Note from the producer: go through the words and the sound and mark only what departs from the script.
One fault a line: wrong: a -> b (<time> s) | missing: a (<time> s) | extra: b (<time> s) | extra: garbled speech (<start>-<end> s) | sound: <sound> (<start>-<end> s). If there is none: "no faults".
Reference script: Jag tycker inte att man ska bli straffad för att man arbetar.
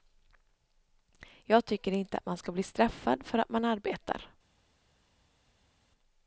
no faults